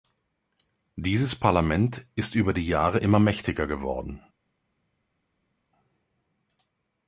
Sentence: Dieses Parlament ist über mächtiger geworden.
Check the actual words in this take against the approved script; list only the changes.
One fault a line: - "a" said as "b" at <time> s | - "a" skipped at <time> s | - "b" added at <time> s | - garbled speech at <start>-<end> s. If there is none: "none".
- "die Jahre immer" added at 2.5 s